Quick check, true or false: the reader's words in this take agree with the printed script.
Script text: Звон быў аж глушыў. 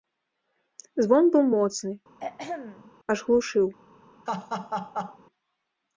false